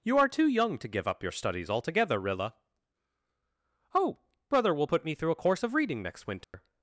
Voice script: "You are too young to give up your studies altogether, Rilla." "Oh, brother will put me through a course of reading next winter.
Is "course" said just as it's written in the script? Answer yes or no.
yes